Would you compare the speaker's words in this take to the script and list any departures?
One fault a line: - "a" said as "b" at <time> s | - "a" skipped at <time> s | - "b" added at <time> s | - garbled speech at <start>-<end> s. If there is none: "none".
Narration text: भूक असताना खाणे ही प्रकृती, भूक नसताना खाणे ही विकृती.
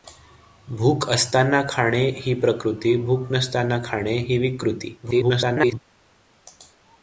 - garbled speech at 5.0-5.8 s